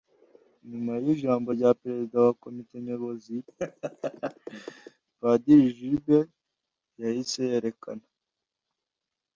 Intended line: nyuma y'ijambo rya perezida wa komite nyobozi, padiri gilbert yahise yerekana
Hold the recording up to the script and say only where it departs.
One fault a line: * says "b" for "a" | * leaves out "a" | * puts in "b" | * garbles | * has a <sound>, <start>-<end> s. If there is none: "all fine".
* has a laugh, 3.5-5.0 s